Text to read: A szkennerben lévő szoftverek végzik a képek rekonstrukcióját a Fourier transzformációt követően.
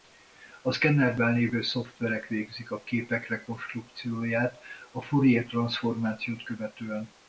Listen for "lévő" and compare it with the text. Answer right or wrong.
right